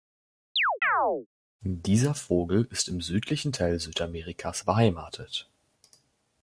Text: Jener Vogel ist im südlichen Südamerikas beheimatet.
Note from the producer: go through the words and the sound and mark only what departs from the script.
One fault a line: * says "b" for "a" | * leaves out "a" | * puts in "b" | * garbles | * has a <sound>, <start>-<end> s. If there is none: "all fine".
* has a chirp, 0.6-1.3 s
* says "Dieser" for "Jener"
* puts in "Teil"